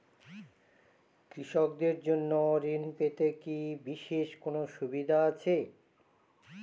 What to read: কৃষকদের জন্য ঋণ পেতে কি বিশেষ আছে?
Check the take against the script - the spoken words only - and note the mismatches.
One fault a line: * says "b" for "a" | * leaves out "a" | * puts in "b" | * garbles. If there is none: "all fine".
* puts in "কোনো সুবিধা"